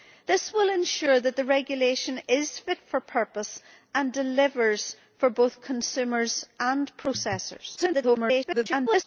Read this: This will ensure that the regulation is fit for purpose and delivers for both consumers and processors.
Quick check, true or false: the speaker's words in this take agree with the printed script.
false